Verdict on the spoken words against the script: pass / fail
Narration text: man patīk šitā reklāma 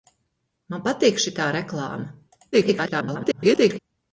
fail